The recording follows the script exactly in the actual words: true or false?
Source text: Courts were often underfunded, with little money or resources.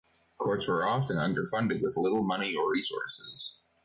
true